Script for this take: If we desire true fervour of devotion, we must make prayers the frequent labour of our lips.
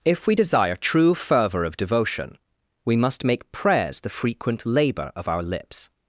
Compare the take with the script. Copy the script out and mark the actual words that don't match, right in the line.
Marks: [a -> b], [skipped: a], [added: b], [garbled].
If we desire true fervour of devotion, we must make prayers the frequent labour of our lips.